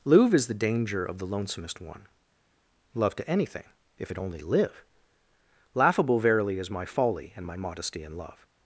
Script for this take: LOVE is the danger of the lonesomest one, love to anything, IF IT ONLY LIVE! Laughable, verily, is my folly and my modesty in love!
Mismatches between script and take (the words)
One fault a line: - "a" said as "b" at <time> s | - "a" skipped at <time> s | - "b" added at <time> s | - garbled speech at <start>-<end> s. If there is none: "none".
- "LOVE" said as "Louvre" at 0.0 s